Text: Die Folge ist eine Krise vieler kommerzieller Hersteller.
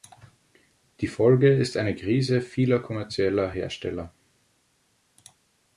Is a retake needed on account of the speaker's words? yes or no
no